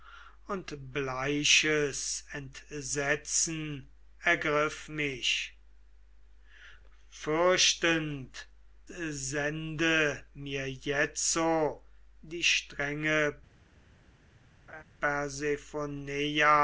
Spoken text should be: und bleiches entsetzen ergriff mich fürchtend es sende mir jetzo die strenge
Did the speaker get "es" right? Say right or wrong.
wrong